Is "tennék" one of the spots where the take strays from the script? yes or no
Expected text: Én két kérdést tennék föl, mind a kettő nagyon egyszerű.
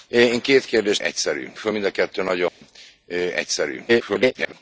yes